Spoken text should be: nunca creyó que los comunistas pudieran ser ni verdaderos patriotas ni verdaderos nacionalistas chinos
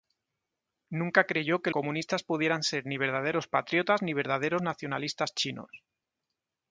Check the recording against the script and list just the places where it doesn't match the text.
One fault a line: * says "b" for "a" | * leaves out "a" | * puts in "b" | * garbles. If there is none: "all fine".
* leaves out "los"